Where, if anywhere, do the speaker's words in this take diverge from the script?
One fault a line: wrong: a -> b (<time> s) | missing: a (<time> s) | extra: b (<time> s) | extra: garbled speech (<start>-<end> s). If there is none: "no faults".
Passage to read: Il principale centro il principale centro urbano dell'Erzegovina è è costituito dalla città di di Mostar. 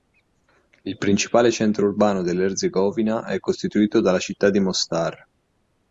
missing: il principale centro (1.9 s)
missing: è (3.4 s)
missing: di (4.6 s)